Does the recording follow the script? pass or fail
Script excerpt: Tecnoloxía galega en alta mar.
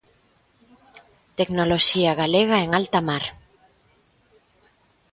pass